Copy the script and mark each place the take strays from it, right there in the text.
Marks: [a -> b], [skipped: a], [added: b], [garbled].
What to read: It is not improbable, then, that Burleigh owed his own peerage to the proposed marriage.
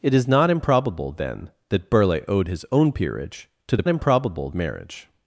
It is not improbable, then, that Burleigh owed his own peerage to the [proposed -> improbable] marriage.